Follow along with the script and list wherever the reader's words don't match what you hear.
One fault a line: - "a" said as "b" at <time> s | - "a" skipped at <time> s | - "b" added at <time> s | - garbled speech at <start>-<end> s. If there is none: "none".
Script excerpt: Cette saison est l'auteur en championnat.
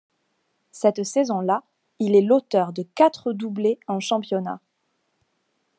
- "là il" added at 1.4 s
- "de quatre doublés" added at 2.7 s